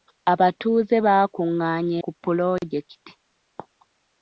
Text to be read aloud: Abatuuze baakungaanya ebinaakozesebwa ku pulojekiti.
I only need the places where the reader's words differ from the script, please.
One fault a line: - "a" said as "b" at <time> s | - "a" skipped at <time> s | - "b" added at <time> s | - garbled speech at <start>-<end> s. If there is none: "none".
- "ebinaakozesebwa" skipped at 1.9 s